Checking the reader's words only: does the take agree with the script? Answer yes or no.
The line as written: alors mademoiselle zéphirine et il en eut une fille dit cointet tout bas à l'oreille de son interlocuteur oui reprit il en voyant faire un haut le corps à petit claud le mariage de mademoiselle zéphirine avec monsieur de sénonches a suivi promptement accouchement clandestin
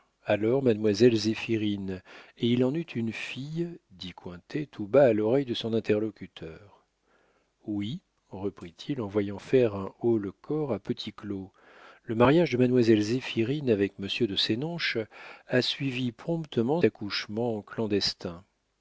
yes